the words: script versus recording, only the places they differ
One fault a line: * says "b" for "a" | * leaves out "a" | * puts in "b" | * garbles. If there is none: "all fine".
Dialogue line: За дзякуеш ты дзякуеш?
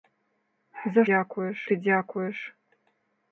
all fine